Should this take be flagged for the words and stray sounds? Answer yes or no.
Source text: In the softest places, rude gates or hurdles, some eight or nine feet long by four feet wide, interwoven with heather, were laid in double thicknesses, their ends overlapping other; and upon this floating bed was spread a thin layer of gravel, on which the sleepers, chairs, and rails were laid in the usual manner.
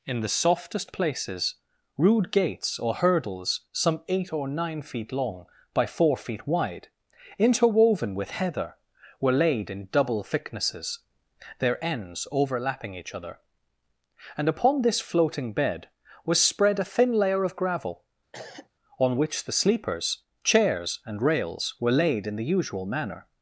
yes